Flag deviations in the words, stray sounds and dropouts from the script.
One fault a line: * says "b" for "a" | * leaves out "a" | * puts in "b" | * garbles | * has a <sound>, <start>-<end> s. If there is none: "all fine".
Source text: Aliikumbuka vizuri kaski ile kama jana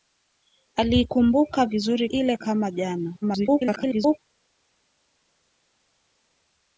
* leaves out "kaski"
* garbles